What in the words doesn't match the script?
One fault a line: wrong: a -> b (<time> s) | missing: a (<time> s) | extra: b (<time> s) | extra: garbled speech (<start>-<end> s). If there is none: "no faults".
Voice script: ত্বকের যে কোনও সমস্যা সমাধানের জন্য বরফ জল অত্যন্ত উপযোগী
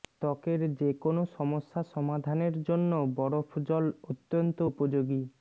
no faults